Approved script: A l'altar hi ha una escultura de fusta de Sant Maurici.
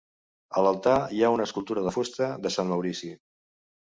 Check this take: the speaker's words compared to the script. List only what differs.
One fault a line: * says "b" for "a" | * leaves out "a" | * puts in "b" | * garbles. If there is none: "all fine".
all fine